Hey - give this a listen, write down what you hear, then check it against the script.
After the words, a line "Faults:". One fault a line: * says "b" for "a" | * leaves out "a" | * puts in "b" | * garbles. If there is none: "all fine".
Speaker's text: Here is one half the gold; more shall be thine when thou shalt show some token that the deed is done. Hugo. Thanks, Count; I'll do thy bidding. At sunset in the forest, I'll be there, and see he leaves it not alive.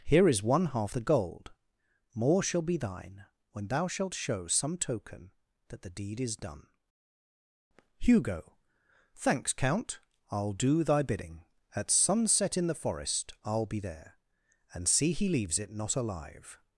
Here is one half the gold; more shall be thine when thou shalt show some token that the deed is done. Hugo. Thanks, Count; I'll do thy bidding. At sunset in the forest, I'll be there, and see he leaves it not alive.
Faults:
all fine